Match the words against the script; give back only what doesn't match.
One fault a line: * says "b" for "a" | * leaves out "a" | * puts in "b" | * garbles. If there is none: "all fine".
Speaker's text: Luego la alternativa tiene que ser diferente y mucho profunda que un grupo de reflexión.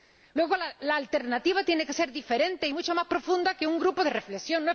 * puts in "más"